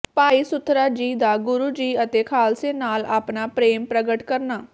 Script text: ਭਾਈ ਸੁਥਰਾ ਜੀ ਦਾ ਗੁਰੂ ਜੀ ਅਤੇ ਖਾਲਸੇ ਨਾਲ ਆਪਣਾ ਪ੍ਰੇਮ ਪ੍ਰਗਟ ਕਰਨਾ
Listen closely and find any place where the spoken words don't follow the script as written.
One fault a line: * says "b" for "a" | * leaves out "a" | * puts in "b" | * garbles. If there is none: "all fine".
all fine